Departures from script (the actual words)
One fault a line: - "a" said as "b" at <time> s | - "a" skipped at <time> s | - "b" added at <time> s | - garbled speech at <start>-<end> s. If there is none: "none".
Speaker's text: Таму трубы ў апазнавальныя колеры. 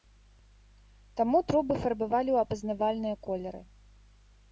- "фарбавалі" added at 1.8 s